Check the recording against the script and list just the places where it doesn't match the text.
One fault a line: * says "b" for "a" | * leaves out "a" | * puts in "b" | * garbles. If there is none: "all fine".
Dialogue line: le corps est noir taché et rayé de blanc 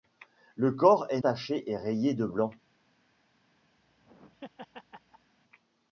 * leaves out "noir"